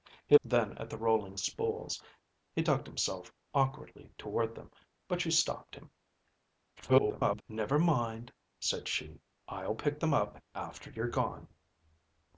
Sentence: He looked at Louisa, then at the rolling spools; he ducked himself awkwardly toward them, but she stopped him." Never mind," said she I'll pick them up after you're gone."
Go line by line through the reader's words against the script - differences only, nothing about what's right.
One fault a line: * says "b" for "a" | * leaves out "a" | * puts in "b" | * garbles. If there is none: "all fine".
* leaves out "looked at Louisa"
* garbles